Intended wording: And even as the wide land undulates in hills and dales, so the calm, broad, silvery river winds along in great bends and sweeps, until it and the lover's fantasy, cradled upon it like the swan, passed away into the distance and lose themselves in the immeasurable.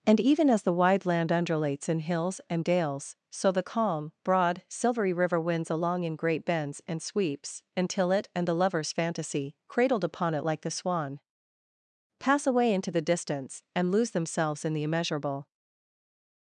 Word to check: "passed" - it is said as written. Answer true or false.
false